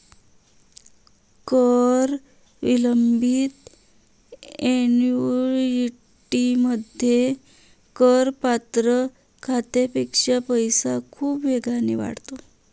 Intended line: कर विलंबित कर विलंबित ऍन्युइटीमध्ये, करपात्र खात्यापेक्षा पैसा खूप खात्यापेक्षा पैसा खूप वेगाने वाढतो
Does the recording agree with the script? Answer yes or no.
no